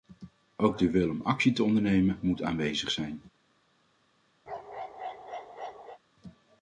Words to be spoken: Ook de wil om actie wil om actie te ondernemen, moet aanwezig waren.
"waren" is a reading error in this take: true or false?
true